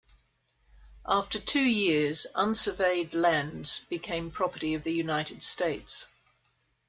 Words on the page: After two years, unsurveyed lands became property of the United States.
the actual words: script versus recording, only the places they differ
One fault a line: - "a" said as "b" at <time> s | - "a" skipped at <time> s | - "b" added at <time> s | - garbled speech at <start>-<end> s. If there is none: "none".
none